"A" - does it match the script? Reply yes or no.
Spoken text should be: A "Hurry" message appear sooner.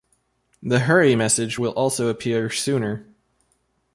no